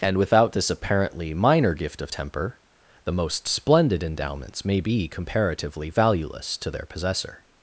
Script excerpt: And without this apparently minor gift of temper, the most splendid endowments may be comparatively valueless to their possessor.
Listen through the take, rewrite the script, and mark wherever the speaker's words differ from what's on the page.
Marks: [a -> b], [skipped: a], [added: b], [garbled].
And without this apparently minor gift of temper, the most splendid endowments may be comparatively valueless to their possessor.